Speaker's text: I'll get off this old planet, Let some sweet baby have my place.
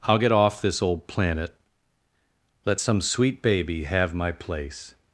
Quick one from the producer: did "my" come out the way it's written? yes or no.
yes